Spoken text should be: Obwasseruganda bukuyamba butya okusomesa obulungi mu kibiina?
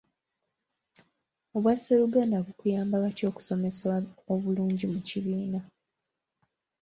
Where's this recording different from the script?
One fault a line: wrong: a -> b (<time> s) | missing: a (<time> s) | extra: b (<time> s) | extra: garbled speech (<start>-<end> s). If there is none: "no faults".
no faults